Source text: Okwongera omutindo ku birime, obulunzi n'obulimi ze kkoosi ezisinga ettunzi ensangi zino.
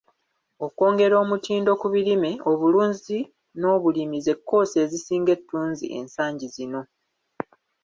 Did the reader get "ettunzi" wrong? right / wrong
right